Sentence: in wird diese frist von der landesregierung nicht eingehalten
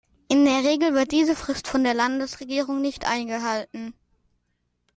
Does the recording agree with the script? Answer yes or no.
no